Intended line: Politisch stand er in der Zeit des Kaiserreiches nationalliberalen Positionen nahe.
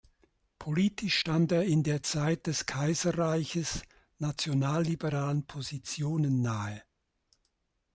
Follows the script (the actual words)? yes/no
yes